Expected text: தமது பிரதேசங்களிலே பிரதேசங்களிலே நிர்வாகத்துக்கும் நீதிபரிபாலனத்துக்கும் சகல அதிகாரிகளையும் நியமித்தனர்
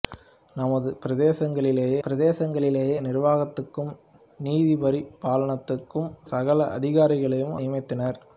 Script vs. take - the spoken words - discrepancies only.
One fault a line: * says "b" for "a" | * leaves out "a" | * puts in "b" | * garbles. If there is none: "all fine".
all fine